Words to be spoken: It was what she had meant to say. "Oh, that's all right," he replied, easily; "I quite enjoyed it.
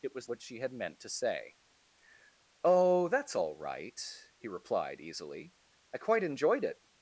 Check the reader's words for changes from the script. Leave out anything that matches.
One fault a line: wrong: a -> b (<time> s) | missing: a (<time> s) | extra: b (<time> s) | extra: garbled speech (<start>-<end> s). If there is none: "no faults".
no faults